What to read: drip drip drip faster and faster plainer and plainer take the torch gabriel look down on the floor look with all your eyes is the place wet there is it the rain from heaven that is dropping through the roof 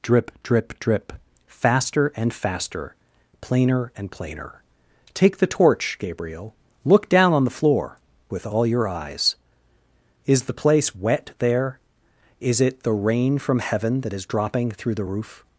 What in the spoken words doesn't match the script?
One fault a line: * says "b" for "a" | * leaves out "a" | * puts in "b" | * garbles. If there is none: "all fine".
* leaves out "look"